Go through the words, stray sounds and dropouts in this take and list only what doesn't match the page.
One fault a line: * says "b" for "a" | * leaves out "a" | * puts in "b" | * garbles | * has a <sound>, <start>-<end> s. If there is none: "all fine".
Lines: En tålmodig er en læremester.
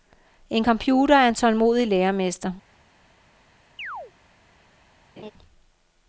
* says "computer" for "tålmodig"
* puts in "tålmodig"
* has a chirp, 3.8-4.1 s
* has a laugh, 5.2-5.3 s